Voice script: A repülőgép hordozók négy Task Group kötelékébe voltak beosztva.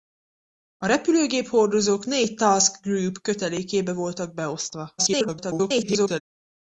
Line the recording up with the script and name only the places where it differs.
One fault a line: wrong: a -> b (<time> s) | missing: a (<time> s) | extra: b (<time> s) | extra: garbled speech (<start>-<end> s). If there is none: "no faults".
extra: garbled speech (5.0-6.2 s)